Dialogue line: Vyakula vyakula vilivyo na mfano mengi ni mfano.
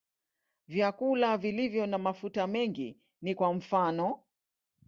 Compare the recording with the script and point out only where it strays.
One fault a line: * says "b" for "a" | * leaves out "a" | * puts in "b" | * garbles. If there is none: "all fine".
* leaves out "vyakula"
* says "mafuta" for "mfano"
* puts in "kwa"